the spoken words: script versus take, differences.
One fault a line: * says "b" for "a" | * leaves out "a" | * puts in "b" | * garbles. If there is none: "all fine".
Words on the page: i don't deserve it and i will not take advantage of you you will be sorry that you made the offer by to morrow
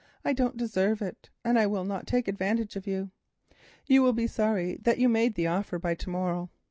all fine